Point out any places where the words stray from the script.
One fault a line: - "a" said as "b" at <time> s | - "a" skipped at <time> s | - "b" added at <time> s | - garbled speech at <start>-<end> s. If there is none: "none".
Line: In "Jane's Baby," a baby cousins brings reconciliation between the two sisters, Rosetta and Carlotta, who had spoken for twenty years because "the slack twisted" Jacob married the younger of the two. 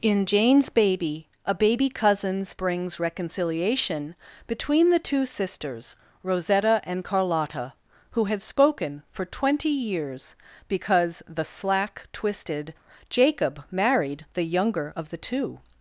none